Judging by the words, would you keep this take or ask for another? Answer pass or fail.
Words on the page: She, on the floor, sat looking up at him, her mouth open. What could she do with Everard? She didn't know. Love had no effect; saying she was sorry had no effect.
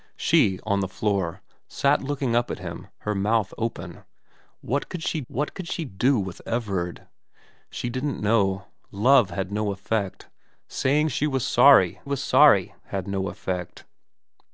fail